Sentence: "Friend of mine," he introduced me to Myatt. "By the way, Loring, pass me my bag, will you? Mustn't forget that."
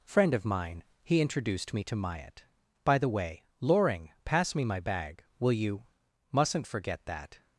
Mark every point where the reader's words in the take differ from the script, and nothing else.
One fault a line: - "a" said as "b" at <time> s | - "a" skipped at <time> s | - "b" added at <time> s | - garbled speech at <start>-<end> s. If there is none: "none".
none